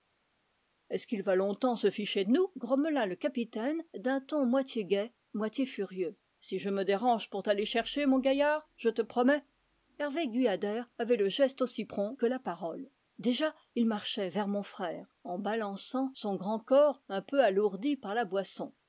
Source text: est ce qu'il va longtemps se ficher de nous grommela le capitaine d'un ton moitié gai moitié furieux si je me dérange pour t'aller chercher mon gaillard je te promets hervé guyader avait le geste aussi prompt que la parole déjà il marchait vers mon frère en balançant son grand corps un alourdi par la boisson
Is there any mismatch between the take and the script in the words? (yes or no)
yes